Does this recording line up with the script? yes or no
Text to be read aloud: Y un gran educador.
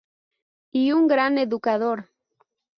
yes